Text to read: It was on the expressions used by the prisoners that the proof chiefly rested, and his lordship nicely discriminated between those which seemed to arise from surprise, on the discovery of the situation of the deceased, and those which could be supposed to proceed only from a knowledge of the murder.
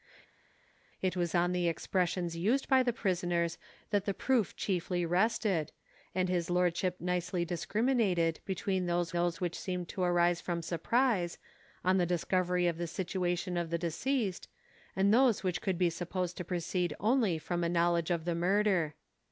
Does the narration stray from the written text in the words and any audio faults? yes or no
yes